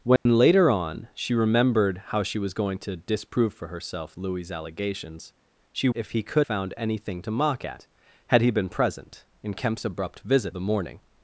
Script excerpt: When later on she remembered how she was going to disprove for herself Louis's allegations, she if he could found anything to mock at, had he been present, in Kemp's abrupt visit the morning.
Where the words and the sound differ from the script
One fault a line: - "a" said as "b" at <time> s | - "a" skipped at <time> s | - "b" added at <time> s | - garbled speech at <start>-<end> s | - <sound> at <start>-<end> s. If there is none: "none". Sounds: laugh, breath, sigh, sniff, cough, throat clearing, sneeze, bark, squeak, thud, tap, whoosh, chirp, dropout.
- dropout at 0.2-0.3 s